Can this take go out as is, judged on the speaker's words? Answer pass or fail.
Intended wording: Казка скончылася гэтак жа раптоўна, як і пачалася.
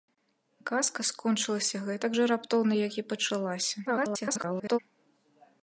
fail